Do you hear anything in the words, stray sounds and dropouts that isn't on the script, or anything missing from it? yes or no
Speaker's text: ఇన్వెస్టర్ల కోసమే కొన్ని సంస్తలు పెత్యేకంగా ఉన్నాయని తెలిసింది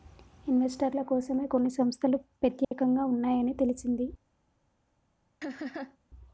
yes